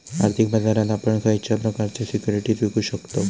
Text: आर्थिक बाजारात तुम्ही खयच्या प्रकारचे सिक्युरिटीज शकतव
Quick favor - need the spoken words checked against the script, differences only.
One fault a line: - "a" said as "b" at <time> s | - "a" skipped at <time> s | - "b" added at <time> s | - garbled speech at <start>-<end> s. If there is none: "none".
- "तुम्ही" said as "आपण" at 0.9 s
- "विकु" added at 2.6 s